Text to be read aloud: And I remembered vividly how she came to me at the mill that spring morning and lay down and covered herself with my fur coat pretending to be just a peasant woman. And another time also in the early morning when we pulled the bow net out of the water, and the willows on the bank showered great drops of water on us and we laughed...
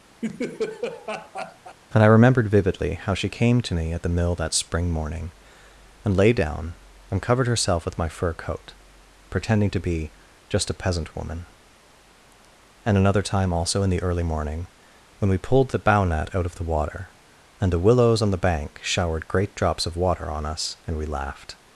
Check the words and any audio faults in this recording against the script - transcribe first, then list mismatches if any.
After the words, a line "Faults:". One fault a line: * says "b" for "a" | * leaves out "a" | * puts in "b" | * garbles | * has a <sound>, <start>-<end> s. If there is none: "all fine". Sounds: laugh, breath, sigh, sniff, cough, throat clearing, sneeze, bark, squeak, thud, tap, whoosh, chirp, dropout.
And I remembered vividly how she came to me at the mill that spring morning and lay down and covered herself with my fur coat pretending to be just a peasant woman. And another time also in the early morning when we pulled the bow net out of the water, and the willows on the bank showered great drops of water on us and we laughed...
Faults:
* has a laugh, 0.2-1.8 s